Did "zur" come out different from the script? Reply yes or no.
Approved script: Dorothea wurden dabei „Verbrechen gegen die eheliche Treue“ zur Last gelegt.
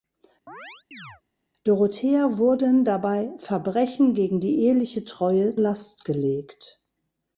yes